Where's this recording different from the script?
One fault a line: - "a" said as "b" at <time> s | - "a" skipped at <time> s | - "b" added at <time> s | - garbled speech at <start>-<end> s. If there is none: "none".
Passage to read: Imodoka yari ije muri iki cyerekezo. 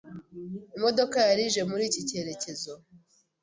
none